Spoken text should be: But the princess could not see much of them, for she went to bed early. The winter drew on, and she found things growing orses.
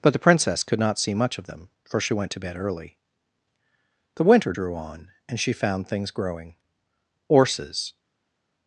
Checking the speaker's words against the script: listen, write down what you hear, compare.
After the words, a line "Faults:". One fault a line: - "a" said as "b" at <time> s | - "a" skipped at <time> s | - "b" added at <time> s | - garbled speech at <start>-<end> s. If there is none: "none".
But the princess could not see much of them, for she went to bed early. The winter drew on, and she found things growing orses.
Faults:
none